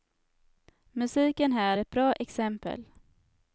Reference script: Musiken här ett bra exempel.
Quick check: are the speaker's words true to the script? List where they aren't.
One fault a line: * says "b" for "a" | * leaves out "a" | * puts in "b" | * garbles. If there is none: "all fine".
all fine